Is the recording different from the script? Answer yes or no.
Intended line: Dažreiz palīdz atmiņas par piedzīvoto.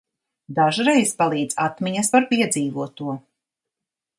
no